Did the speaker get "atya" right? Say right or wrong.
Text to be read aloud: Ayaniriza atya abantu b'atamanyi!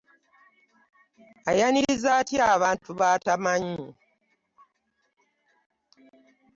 right